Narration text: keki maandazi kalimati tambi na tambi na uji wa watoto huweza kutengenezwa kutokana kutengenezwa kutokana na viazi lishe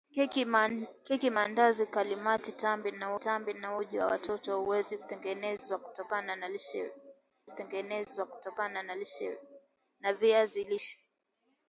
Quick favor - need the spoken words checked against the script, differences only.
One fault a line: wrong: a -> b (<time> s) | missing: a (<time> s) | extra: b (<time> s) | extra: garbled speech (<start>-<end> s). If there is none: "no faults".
no faults